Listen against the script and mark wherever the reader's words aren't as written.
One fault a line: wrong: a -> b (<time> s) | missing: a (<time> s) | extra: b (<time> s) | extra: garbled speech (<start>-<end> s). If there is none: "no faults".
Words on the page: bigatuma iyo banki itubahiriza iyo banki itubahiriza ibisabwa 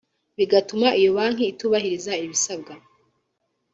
missing: iyo banki itubahiriza (2.1 s)